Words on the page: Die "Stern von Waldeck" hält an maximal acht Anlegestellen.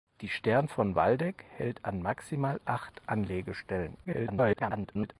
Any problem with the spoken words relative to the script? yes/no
yes